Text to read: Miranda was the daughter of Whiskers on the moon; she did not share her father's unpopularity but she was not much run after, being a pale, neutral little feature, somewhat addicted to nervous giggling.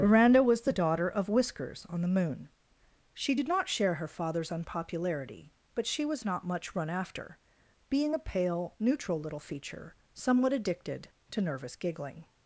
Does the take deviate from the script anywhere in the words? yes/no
no